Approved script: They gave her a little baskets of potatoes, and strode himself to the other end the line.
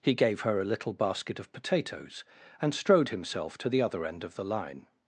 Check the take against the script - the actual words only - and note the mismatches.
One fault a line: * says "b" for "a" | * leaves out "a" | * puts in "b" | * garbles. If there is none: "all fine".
* says "He" for "They"
* says "basket" for "baskets"
* puts in "of"